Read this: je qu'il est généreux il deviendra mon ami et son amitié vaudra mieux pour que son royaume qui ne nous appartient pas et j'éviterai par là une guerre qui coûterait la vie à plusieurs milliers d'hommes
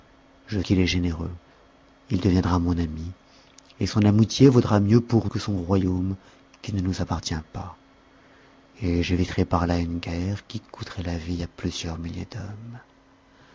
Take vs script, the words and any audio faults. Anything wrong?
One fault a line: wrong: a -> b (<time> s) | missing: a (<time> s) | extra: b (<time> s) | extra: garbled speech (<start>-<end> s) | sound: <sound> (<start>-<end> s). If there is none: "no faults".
no faults